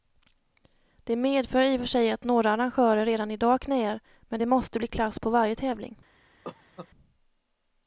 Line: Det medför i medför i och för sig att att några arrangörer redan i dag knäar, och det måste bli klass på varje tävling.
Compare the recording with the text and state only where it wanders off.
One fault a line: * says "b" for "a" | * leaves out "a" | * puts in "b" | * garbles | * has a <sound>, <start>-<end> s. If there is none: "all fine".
* leaves out "medför i"
* leaves out "att"
* says "men" for "och"
* has a cough, 6.4-6.9 s